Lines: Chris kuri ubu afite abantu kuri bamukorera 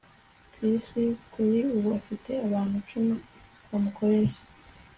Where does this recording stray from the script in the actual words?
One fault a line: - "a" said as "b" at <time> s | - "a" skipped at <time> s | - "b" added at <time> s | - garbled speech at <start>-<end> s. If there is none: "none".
- "kuri" said as "icumi" at 2.8 s